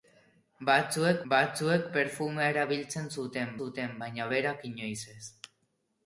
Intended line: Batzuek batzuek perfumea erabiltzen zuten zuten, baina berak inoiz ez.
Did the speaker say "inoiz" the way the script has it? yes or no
yes